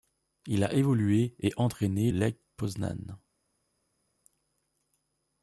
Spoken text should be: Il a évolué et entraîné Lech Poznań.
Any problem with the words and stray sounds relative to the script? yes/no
no